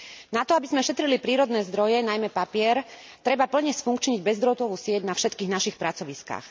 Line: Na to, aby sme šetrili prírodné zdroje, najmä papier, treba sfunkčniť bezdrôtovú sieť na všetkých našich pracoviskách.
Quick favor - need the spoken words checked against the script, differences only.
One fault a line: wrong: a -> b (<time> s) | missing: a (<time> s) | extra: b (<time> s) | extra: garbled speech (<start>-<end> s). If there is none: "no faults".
extra: plne (3.5 s)